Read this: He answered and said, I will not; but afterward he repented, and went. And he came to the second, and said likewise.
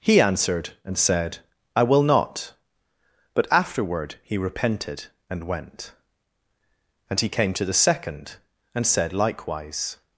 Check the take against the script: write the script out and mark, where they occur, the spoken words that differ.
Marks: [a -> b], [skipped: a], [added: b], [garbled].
He answered and said, I will not; but afterward he repented, and went. And he came to the second, and said likewise.